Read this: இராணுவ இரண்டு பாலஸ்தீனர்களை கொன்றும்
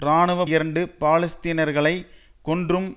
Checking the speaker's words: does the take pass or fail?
pass